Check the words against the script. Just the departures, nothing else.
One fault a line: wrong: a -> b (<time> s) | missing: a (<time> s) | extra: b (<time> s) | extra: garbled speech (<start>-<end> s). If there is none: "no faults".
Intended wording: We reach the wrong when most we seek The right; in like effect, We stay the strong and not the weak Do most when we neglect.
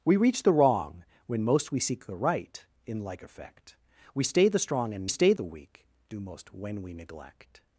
wrong: not -> stay (5.1 s)